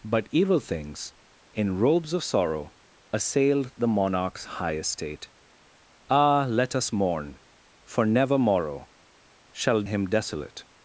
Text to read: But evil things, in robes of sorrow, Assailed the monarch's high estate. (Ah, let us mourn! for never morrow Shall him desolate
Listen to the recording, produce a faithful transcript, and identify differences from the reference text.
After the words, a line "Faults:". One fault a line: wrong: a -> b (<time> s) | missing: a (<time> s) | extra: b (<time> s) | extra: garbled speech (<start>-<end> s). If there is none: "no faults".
But evil things, in robes of sorrow, Assailed the monarch's high estate. (Ah, let us mourn! for never morrow Shall him desolate
Faults:
no faults